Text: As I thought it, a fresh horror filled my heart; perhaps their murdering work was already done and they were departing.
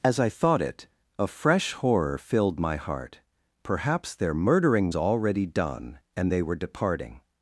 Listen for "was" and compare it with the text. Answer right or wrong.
wrong